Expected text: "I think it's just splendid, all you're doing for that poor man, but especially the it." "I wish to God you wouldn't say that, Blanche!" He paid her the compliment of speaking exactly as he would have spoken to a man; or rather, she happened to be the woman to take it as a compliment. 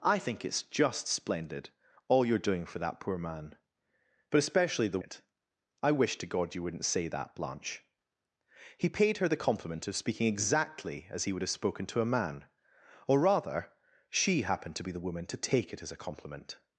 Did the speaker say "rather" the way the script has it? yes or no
yes